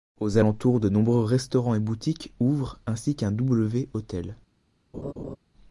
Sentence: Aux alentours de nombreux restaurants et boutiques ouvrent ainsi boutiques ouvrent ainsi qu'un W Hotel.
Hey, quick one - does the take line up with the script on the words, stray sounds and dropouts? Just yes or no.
no